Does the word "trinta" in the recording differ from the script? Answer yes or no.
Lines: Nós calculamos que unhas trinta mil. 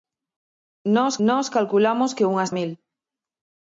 yes